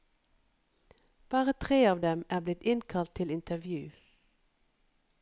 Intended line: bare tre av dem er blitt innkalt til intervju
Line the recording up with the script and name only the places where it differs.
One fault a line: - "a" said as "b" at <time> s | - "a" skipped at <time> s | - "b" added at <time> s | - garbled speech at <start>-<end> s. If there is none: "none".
none